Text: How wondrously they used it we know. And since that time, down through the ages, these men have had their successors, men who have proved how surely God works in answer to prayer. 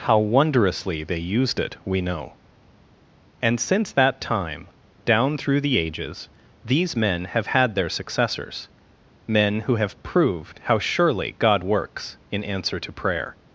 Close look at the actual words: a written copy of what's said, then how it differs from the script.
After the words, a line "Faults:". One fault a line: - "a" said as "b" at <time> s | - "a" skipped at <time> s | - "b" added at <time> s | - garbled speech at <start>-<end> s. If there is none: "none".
How wondrously they used it we know. And since that time, down through the ages, these men have had their successors, men who have proved how surely God works in answer to prayer.
Faults:
none